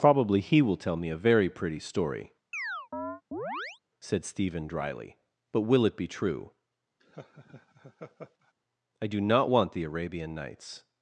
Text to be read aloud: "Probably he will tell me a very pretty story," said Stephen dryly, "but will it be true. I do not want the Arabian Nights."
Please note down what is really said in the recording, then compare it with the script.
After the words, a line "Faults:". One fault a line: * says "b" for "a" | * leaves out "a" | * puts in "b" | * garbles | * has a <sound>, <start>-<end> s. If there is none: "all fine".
"Probably he will tell me a very pretty story," said Stephen dryly, "but will it be true. I do not want the Arabian Nights."
Faults:
* has a chirp, 2.5-3.8 s
* has a laugh, 7.0-8.5 s